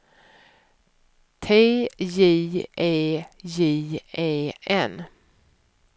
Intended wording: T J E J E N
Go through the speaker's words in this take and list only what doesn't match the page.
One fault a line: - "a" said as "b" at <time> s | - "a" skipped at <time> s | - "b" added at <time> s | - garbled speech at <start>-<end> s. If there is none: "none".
none